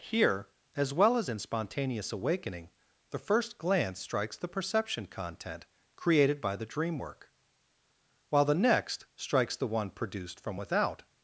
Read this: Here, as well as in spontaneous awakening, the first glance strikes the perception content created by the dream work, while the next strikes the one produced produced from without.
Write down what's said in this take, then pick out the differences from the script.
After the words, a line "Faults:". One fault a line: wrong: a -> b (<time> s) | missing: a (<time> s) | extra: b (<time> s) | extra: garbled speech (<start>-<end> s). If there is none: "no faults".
Here, as well as in spontaneous awakening, the first glance strikes the perception content created by the dream work, while the next strikes the one produced from without.
Faults:
missing: produced (10.4 s)